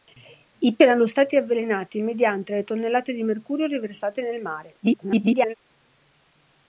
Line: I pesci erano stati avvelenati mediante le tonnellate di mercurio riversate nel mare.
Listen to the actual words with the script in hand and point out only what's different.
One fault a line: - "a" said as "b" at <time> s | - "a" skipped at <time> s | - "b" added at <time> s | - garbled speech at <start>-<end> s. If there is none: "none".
- "pesci" skipped at 0.8 s
- garbled speech at 4.8-5.5 s